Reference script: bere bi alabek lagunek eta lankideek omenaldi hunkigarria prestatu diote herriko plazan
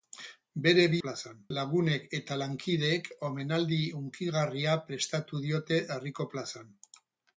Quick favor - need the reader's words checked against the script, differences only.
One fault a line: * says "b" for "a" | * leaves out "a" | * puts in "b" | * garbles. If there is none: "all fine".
* says "plazan" for "alabek"